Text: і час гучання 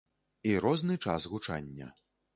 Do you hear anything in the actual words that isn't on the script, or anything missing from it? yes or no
yes